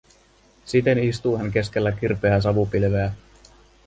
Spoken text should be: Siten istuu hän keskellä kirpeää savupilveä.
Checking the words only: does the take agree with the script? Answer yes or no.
yes